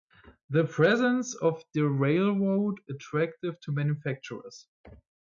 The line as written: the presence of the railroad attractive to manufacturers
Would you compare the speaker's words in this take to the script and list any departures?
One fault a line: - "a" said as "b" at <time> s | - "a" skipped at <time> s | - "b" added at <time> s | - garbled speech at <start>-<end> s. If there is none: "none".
none